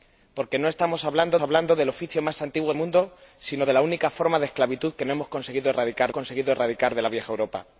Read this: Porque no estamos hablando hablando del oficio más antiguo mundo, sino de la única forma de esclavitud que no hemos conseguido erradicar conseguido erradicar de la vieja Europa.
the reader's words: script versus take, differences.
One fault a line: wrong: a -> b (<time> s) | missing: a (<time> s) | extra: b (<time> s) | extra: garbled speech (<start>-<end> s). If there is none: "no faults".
no faults